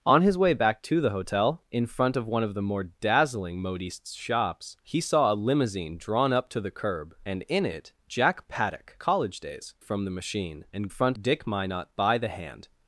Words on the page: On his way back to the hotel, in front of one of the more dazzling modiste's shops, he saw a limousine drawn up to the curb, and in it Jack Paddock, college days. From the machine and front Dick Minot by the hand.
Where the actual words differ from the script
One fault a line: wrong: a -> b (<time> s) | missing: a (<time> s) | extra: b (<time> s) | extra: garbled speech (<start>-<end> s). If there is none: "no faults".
no faults